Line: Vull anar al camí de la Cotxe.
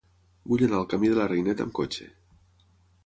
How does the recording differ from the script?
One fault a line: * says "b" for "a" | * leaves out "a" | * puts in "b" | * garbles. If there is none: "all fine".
* puts in "Reineta amb"